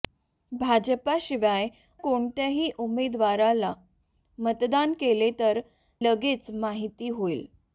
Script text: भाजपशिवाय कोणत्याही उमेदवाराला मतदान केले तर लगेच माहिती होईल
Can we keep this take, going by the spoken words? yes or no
yes